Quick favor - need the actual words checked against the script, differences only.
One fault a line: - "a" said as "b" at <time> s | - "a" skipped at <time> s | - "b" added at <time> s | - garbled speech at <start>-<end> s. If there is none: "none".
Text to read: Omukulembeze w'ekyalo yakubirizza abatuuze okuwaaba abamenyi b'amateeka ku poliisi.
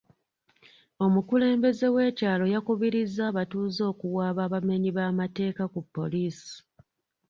none